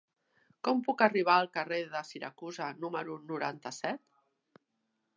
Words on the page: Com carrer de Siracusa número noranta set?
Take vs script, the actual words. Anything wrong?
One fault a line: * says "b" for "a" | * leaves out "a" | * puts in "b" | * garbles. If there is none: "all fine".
* puts in "puc arribar al"